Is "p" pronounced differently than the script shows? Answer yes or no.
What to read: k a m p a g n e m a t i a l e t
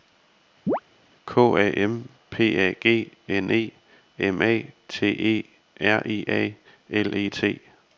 no